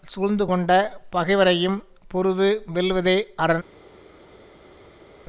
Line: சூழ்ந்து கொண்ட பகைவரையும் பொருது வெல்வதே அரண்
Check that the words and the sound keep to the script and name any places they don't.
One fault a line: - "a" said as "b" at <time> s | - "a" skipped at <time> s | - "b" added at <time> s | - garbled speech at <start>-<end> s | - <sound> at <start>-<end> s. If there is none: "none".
none